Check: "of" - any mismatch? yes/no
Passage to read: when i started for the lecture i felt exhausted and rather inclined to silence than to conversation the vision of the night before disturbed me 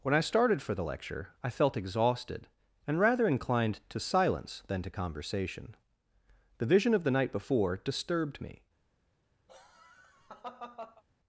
no